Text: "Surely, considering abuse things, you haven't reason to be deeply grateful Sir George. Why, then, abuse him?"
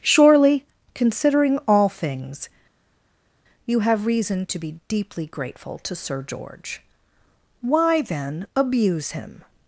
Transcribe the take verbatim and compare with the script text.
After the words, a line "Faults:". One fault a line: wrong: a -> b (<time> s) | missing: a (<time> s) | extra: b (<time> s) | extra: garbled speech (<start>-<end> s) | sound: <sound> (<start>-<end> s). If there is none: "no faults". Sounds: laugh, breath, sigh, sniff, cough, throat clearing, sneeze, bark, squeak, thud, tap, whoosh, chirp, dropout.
"Surely, considering all things, you have reason to be deeply grateful to Sir George. Why, then, abuse him?"
Faults:
wrong: abuse -> all (1.7 s)
wrong: haven't -> have (3.8 s)
extra: to (5.8 s)